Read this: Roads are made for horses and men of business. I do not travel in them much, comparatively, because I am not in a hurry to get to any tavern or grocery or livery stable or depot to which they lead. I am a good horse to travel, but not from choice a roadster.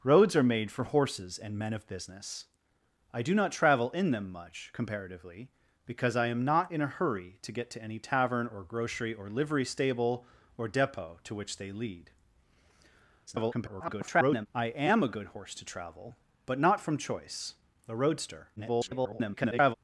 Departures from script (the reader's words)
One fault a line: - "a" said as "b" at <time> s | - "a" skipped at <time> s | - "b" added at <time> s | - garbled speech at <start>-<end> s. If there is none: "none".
- garbled speech at 13.3-14.5 s
- garbled speech at 18.6-19.7 s